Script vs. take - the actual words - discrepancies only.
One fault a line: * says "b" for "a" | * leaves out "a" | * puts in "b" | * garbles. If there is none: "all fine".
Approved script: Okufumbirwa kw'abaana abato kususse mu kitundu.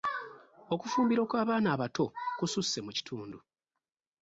all fine